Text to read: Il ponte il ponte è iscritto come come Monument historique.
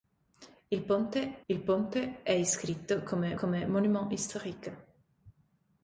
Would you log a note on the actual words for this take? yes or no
no